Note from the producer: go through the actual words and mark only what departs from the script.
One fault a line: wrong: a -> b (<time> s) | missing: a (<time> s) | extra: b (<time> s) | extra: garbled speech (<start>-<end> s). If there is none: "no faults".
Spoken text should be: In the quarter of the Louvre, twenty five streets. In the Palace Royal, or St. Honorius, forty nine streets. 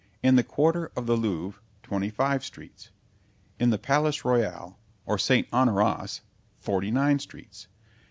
no faults